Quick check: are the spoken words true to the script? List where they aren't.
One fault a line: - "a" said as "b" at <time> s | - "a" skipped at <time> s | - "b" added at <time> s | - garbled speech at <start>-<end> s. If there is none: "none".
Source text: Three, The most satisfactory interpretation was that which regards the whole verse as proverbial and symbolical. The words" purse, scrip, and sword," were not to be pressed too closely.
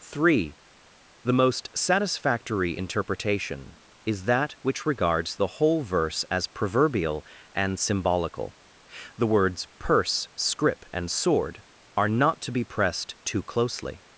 - "was" said as "is" at 4.0 s
- "were" said as "are" at 12.0 s